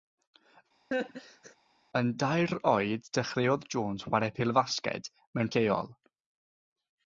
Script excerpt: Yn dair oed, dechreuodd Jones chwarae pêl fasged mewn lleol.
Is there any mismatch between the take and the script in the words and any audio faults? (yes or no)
yes